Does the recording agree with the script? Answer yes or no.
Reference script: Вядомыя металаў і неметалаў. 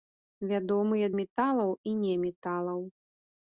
yes